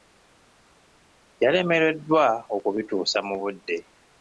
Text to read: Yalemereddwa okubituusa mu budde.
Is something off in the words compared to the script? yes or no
no